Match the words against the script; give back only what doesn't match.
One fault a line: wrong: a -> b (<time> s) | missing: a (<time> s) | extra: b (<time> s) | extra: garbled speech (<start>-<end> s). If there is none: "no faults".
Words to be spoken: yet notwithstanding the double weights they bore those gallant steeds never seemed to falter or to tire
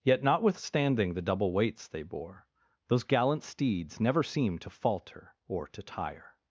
no faults